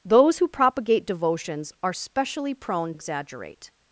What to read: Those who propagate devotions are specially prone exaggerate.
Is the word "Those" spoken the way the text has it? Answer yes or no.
yes